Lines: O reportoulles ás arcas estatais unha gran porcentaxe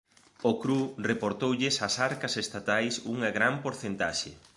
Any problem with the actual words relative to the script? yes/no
yes